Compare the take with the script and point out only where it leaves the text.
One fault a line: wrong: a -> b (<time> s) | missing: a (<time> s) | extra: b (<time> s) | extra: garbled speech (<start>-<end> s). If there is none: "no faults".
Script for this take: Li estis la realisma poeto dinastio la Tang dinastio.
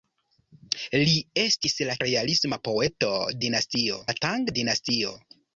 no faults